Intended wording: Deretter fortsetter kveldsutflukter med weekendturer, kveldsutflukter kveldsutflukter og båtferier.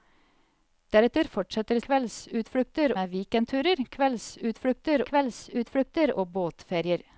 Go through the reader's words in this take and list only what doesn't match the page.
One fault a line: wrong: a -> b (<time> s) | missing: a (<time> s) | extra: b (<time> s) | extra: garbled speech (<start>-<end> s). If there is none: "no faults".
no faults